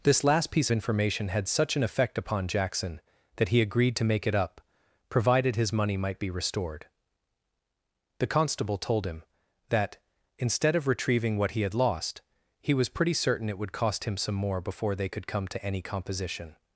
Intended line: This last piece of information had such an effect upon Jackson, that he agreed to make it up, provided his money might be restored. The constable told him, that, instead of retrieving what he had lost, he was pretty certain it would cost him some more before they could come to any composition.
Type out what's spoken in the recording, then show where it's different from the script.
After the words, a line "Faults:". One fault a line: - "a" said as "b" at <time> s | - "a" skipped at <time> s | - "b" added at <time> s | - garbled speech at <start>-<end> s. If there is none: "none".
This last piece information had such an effect upon Jackson, that he agreed to make it up, provided his money might be restored. The constable told him, that, instead of retrieving what he had lost, he was pretty certain it would cost him some more before they could come to any composition.
Faults:
- "of" skipped at 0.7 s